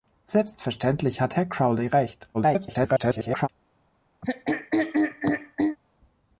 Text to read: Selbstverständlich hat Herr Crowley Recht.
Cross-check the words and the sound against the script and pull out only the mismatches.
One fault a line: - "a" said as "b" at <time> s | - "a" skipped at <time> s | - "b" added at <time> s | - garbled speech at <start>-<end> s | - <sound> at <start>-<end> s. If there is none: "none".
- garbled speech at 2.3-3.5 s
- throat clearing at 4.2-5.8 s